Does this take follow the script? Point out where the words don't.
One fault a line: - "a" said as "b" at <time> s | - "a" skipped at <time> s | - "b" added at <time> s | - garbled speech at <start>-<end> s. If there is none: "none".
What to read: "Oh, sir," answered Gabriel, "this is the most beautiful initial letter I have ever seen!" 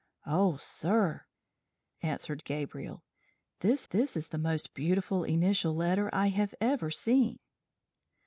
- "this" added at 3.9 s